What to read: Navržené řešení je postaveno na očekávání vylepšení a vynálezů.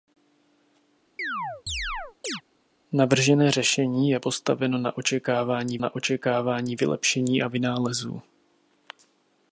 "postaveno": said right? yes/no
yes